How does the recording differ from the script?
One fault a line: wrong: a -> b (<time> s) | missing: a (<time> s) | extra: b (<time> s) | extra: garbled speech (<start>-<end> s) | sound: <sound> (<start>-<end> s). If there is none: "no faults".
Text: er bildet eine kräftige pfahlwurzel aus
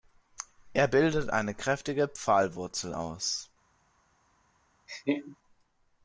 sound: laugh (4.9-5.4 s)